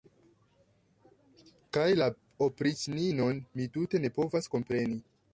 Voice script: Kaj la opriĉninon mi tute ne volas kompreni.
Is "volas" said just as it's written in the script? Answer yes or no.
no